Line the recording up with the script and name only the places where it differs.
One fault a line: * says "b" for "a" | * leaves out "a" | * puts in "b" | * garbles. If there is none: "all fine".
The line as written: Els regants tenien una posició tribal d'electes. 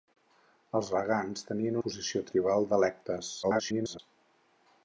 * leaves out "una"
* garbles